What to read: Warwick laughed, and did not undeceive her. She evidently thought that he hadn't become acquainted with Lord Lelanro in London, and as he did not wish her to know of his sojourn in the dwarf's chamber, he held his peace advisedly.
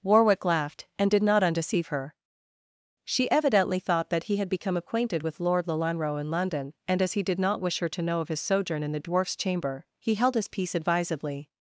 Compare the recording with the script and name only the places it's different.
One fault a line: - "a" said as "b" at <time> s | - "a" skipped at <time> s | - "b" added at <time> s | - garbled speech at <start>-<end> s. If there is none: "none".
- "hadn't" said as "had" at 4.4 s